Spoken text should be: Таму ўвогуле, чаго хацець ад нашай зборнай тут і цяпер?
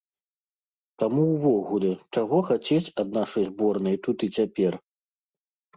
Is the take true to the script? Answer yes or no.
yes